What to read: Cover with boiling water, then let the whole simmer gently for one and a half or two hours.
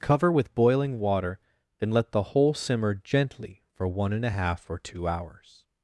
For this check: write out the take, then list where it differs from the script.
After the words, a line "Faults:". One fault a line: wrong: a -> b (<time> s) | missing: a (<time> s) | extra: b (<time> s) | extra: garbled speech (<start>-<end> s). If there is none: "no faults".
Cover with boiling water, then let the whole simmer gently for one and a half or two hours.
Faults:
no faults